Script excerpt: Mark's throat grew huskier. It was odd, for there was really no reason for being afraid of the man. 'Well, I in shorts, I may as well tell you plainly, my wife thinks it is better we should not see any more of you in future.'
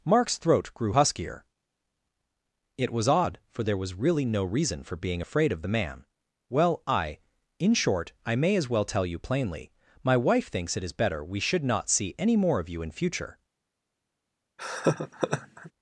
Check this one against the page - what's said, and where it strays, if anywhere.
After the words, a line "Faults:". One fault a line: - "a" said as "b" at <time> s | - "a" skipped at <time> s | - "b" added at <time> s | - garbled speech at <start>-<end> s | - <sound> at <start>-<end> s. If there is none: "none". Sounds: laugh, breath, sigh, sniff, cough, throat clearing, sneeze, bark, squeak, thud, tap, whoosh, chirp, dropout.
Mark's throat grew huskier. It was odd, for there was really no reason for being afraid of the man. 'Well, I in short, I may as well tell you plainly, my wife thinks it is better we should not see any more of you in future.'
Faults:
- "shorts" said as "short" at 7.7 s
- laugh at 14.6-15.7 s